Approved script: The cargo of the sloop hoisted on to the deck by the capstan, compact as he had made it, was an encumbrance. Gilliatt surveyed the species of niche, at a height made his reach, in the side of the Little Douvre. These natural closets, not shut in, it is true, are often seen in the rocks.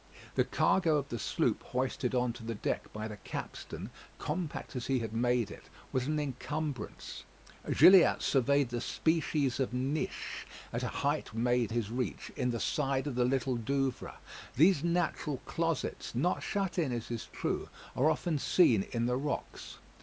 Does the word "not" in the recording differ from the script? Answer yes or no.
no